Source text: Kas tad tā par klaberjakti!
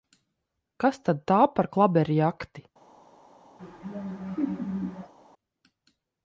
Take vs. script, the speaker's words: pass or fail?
pass